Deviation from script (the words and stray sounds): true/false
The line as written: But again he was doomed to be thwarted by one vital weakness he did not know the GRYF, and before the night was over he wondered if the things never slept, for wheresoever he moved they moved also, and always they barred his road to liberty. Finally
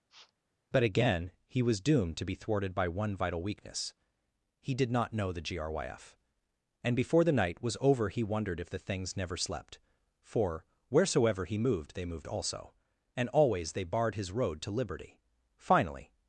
true